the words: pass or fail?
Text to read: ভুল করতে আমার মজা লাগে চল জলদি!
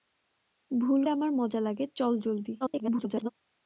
fail